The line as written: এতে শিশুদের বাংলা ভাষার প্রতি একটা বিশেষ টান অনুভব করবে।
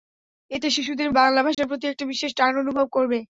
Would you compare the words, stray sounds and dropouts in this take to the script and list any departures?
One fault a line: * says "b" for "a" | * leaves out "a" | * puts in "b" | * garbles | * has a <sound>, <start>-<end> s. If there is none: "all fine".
* has a dropout, 1.5-1.6 s